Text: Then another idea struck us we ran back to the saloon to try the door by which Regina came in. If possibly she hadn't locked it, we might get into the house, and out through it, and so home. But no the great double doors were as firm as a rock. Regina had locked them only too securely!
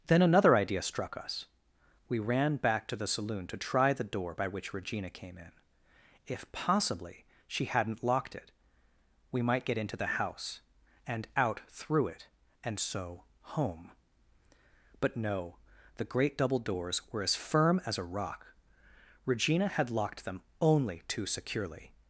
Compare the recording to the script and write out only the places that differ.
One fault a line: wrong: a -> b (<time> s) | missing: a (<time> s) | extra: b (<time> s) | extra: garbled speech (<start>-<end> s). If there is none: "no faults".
no faults